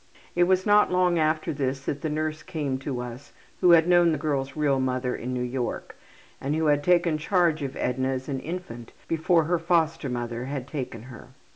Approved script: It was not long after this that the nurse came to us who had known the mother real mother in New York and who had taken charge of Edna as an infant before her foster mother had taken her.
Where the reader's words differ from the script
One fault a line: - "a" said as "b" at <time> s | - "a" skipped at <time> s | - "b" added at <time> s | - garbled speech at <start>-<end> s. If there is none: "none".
- "mother" said as "girl's" at 4.2 s